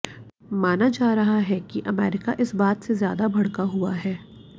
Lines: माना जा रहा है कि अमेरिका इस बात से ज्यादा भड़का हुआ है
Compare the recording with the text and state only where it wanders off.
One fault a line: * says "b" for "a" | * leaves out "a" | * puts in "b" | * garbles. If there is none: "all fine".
all fine